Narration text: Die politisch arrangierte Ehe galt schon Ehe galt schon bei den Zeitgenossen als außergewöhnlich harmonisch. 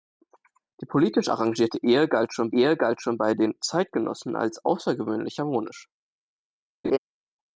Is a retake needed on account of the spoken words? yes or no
no